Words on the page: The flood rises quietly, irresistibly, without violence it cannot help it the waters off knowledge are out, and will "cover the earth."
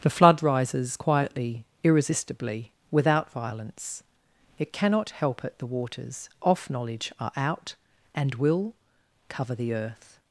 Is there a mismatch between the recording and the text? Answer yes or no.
no